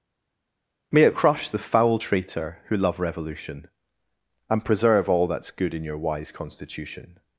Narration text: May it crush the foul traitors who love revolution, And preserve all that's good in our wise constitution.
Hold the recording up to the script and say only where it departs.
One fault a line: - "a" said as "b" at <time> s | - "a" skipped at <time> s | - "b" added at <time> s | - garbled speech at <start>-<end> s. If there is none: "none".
- "traitors" said as "traitor" at 2.0 s
- "our" said as "your" at 5.8 s